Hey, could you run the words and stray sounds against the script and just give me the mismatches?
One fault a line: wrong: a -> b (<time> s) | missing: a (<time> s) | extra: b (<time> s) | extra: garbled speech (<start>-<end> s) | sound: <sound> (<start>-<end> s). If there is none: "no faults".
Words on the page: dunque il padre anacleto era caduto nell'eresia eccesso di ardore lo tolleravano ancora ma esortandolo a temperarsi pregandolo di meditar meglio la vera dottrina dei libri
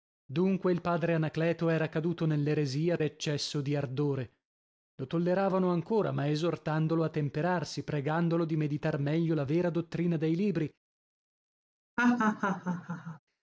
sound: laugh (12.0-13.2 s)